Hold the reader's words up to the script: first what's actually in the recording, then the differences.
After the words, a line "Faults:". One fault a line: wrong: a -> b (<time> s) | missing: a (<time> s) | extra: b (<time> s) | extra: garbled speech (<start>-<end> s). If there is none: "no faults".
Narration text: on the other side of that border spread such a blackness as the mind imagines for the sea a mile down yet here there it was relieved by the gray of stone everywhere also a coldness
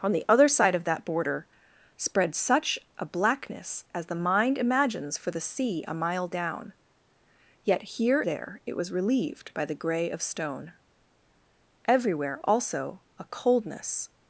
on the other side of that border spread such a blackness as the mind imagines for the sea a mile down yet here there it was relieved by the gray of stone everywhere also a coldness
Faults:
no faults